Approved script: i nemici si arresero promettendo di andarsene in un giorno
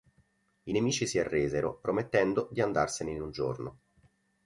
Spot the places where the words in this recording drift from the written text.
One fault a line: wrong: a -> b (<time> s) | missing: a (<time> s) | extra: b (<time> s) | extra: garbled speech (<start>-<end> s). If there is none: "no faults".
no faults